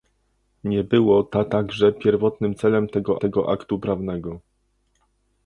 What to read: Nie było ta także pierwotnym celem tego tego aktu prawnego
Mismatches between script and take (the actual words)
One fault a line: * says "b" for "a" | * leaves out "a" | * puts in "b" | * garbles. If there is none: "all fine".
all fine